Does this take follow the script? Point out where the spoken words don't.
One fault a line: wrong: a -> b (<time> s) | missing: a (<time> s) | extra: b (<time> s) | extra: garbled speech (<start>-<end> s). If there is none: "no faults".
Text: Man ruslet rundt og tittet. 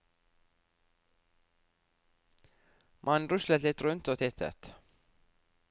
extra: litt (3.6 s)